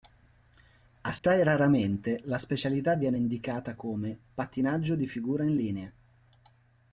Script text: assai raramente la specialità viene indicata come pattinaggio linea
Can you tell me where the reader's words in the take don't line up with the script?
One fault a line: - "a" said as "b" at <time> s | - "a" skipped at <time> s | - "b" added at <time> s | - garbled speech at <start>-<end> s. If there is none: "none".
- "di figura in" added at 4.9 s